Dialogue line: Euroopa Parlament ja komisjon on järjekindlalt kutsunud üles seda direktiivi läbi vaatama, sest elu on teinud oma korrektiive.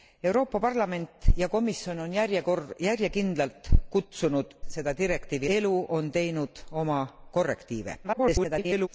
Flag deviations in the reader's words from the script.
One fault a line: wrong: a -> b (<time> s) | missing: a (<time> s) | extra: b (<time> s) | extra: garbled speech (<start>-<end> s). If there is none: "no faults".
missing: üles (4.5 s)
missing: läbi vaatama sest (5.5 s)
extra: garbled speech (8.0-8.9 s)